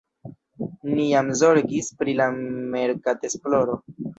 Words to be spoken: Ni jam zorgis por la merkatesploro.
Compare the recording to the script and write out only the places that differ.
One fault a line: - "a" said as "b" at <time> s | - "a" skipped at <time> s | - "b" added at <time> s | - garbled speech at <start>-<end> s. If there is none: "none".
- "por" said as "pri" at 2.0 s